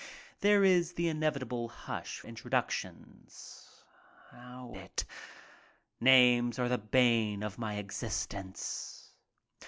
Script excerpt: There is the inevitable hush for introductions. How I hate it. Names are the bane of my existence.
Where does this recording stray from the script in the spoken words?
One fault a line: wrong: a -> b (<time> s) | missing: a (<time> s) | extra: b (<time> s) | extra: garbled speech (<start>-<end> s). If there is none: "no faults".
missing: for (2.2 s)
missing: I hate (4.8 s)